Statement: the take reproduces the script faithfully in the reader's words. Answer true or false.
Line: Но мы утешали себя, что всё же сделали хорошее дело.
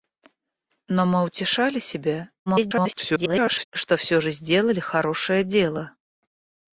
false